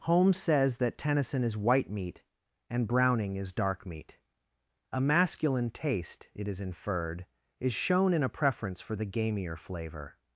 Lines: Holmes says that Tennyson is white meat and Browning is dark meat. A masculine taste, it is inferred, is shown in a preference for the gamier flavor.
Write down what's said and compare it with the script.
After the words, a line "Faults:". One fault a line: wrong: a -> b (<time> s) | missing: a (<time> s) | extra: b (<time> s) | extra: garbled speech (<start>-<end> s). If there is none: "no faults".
Holmes says that Tennyson is white meat and Browning is dark meat. A masculine taste, it is inferred, is shown in a preference for the gamier flavor.
Faults:
no faults